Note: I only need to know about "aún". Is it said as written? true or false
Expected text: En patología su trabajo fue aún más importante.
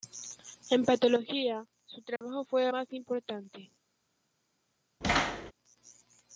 false